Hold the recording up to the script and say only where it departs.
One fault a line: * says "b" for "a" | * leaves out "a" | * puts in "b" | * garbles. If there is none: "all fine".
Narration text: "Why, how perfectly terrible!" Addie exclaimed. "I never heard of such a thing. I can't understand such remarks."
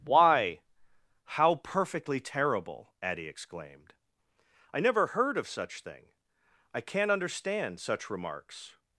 * leaves out "a"